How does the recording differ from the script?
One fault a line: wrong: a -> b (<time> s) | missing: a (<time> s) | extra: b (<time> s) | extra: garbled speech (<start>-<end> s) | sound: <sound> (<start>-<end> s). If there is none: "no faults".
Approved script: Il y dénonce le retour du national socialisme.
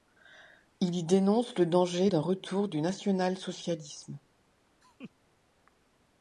extra: danger d'un (1.7 s)
sound: laugh (4.8-5.1 s)